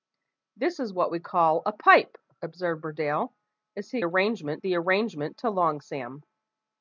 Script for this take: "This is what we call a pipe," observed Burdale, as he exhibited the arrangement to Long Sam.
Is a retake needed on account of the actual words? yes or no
yes